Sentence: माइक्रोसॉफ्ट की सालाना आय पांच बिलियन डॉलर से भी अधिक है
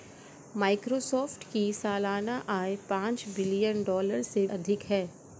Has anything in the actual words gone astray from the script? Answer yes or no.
yes